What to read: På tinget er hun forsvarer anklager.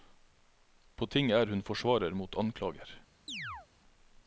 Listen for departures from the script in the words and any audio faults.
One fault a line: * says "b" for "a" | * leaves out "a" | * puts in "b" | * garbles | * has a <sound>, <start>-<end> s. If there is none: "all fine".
* puts in "mot"
* has a chirp, 3.3-3.7 s